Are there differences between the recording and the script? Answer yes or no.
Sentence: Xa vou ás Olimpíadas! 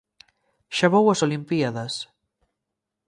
no